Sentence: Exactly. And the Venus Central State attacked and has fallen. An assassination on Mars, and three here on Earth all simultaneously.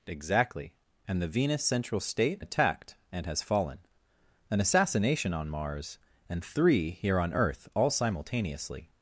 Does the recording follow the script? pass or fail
pass